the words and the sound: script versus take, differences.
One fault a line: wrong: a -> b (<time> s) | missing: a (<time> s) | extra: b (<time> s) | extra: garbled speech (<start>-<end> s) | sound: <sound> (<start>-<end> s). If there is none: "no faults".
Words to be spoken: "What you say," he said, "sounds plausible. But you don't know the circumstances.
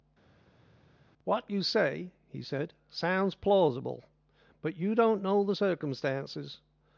no faults